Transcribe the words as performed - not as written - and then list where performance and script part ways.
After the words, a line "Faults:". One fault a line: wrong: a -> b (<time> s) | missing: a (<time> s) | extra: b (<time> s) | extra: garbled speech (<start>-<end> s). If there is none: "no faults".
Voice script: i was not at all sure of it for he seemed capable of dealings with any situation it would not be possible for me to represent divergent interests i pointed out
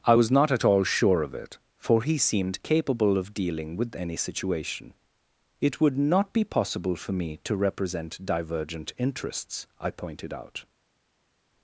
i was not at all sure of it for he seemed capable of dealing with any situation it would not be possible for me to represent divergent interests i pointed out
Faults:
wrong: dealings -> dealing (3.3 s)